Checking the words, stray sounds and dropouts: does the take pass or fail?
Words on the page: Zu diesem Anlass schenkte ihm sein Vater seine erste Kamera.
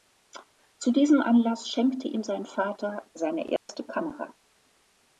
fail